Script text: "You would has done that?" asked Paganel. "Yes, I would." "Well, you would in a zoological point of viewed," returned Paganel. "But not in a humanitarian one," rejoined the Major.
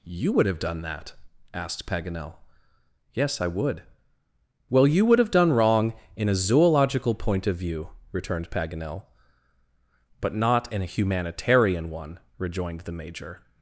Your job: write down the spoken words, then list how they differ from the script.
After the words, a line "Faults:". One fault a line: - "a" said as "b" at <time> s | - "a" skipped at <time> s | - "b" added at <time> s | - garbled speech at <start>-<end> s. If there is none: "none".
"You would have done that?" asked Paganel. "Yes, I would." "Well, you would have done wrong in a zoological point of view," returned Paganel. "But not in a humanitarian one," rejoined the Major.
Faults:
- "has" said as "have" at 0.5 s
- "have done wrong" added at 5.2 s
- "viewed" said as "view" at 7.6 s